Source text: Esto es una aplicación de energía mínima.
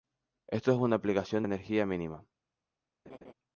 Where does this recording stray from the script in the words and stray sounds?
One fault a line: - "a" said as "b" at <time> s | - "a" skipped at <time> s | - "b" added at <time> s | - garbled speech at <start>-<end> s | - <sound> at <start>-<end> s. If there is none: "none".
- laugh at 3.1-3.3 s